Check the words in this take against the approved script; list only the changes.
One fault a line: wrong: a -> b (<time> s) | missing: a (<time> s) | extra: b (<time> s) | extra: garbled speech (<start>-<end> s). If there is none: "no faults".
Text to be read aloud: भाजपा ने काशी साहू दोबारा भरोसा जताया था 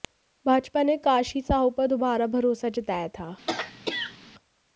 extra: पर (1.8 s)